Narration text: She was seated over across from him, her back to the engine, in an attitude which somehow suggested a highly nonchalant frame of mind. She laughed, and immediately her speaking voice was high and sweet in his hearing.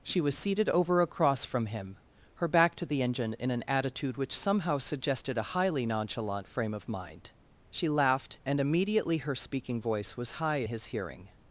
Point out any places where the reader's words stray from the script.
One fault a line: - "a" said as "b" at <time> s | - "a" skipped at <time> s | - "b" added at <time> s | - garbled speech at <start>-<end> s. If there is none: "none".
- "and sweet in" skipped at 10.6 s